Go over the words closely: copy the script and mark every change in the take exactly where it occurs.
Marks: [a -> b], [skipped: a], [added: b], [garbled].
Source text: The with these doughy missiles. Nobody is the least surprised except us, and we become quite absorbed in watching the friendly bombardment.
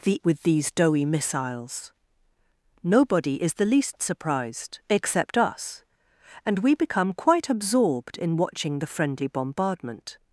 The with these doughy missiles. Nobody is the least surprised except us, and we become quite absorbed in watching the friendly bombardment.